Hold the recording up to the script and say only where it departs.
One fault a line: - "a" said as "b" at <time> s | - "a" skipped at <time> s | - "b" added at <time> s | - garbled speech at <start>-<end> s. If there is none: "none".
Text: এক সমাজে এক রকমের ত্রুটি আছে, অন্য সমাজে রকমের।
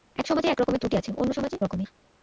none